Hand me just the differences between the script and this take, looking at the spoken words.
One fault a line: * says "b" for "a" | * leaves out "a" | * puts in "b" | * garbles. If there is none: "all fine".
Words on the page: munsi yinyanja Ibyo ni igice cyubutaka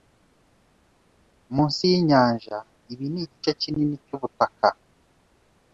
* says "Ibi" for "Ibyo"
* puts in "kinini"